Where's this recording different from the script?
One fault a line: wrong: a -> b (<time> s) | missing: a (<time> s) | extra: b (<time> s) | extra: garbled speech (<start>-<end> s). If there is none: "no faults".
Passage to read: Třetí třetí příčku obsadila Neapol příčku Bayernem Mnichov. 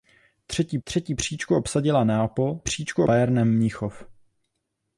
no faults